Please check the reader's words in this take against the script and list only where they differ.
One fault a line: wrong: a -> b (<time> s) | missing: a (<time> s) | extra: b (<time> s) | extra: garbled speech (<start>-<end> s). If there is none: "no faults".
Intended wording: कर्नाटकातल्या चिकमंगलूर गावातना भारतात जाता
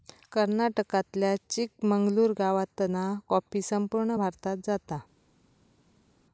extra: कॉफी संपूर्ण (3.3 s)